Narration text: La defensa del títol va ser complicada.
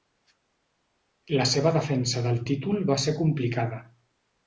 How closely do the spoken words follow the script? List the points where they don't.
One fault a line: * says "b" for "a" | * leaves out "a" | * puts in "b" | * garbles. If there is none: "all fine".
* puts in "seva"